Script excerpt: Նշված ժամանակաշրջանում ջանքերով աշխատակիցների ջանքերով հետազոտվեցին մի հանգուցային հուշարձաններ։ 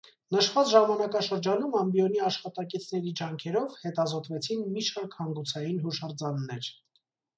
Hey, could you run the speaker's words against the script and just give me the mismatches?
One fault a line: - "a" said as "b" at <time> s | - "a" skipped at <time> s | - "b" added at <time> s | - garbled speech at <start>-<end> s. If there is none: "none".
- "ջանքերով" said as "ամբիոնի" at 1.8 s
- "շարք" added at 4.9 s